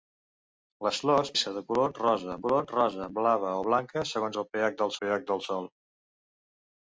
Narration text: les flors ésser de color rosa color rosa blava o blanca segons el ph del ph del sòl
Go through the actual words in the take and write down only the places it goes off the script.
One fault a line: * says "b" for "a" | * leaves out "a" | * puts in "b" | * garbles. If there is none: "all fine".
all fine